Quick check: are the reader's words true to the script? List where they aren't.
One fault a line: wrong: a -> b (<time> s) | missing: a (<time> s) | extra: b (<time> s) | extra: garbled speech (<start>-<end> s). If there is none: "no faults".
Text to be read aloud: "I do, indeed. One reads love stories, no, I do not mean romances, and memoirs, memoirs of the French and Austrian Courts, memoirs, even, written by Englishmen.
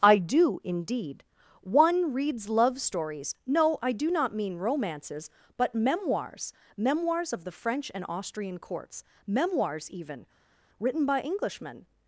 wrong: and -> but (5.6 s)